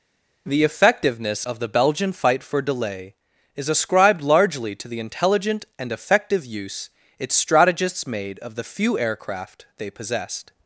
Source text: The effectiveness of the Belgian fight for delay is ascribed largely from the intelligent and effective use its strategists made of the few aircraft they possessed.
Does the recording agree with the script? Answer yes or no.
no